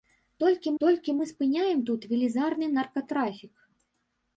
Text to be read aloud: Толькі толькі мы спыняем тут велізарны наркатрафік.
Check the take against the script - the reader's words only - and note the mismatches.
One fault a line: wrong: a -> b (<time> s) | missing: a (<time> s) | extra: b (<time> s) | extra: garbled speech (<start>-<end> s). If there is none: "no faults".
no faults